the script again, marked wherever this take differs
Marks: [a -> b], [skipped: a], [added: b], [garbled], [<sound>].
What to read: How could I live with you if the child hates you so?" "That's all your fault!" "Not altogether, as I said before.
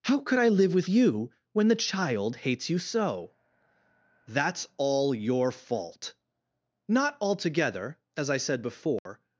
How could I live with you [if -> when] the child hates you so?" "That's all your fault!" "Not altogether, as I said before. [dropout]